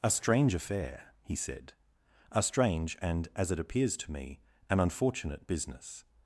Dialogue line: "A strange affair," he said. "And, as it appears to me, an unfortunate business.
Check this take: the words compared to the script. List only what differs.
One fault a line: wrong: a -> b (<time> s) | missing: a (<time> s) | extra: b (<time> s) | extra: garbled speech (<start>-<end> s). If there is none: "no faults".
extra: A strange (2.3 s)